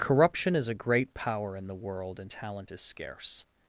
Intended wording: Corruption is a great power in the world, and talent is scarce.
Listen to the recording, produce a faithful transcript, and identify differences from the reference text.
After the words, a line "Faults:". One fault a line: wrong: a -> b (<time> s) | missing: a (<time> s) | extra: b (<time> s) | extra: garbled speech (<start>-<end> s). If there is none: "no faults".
Corruption is a great power in the world, and talent is scarce.
Faults:
no faults